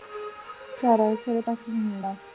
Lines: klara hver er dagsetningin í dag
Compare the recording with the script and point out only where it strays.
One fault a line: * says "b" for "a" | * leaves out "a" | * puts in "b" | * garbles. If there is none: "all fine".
all fine